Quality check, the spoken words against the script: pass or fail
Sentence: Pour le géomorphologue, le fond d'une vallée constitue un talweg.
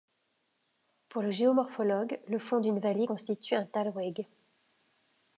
pass